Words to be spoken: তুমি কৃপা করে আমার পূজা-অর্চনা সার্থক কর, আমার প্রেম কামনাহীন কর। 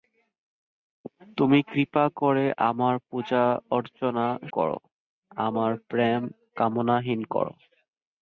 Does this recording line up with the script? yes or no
no